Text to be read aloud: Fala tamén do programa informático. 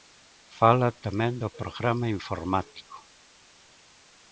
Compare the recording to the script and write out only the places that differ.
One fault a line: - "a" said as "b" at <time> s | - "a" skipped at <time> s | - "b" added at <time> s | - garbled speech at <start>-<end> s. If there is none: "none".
none